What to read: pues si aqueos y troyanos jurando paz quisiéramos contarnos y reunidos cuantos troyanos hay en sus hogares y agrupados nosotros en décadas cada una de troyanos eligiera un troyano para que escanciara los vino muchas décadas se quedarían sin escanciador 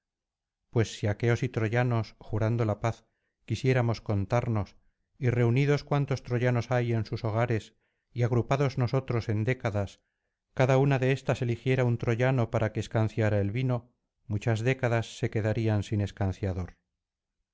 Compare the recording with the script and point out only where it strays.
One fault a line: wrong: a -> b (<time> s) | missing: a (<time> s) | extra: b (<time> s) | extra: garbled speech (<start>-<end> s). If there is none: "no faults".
extra: la (2.6 s)
wrong: troyanos -> éstas (11.1 s)
wrong: los -> el (13.4 s)